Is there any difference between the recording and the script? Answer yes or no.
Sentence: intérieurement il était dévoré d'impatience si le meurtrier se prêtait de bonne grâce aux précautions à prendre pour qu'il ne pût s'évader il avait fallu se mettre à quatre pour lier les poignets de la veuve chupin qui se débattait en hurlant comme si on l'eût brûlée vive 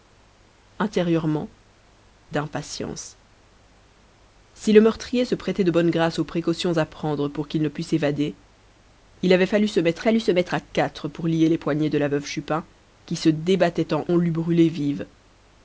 yes